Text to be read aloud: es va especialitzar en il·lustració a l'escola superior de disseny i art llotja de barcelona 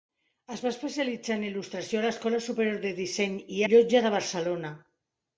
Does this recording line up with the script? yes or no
no